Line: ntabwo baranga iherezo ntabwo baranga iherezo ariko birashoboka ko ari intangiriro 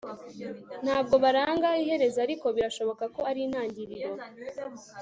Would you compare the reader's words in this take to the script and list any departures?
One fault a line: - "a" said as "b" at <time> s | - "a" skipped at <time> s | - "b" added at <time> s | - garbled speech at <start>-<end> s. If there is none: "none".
- "ntabwo baranga iherezo" skipped at 2.2 s